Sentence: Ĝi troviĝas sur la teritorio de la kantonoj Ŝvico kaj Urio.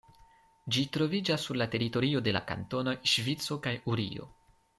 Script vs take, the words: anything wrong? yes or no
no